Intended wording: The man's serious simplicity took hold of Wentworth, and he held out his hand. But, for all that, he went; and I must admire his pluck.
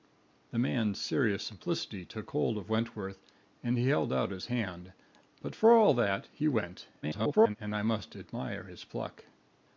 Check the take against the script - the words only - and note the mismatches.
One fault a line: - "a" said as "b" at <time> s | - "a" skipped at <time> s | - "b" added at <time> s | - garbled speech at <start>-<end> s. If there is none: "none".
- garbled speech at 7.0-7.6 s